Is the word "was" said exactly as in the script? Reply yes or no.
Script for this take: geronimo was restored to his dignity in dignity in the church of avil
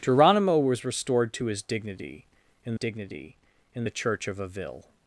yes